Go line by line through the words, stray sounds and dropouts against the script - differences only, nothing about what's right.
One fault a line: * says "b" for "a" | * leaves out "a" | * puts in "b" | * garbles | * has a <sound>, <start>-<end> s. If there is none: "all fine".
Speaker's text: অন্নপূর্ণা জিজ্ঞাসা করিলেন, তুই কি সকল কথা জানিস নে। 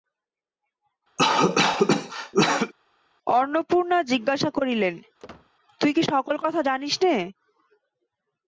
* has a cough, 1.2-2.7 s
* has a squeak, 5.2-5.5 s